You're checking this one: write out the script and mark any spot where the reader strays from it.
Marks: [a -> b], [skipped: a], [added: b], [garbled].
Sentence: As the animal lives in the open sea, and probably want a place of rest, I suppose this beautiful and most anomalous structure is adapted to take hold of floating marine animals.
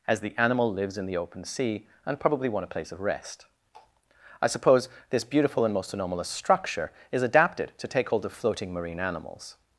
As the animal lives in the open sea, and probably want a place of rest, I suppose this beautiful and most anomalous structure is adapted to take hold of floating marine animals.